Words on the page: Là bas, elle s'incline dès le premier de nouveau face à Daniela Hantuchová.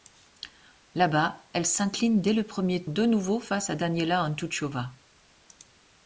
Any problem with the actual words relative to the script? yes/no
no